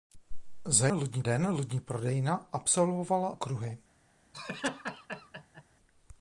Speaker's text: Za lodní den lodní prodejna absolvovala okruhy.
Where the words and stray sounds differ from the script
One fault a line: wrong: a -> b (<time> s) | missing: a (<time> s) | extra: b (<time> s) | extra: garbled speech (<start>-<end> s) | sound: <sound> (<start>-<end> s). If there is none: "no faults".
sound: laugh (4.3-5.6 s)